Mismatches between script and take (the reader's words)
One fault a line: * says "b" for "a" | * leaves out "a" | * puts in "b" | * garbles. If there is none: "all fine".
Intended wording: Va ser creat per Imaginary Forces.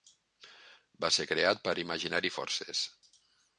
all fine